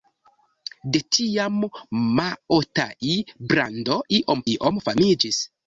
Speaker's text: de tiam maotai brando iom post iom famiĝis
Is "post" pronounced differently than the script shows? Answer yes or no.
yes